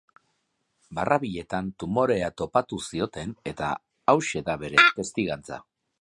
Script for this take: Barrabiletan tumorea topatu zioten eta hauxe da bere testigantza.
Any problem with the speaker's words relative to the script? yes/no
no